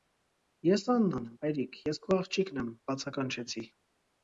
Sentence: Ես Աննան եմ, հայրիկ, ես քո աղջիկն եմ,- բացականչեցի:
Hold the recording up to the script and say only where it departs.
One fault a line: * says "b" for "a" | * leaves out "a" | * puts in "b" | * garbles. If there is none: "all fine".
all fine